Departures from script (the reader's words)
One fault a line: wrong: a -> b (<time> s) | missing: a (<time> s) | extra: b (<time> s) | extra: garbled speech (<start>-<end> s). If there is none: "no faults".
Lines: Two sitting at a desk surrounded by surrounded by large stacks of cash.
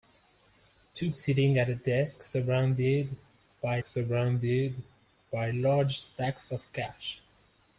no faults